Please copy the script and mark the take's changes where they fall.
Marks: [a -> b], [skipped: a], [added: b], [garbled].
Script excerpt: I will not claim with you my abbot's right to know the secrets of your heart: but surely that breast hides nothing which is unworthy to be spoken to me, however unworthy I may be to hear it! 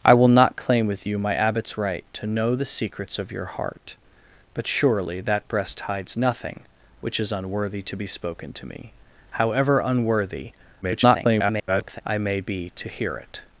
I will not claim with you my abbot's right to know the secrets of your heart: but surely that breast hides nothing which is unworthy to be spoken to me, however unworthy [garbled] I may be to hear it!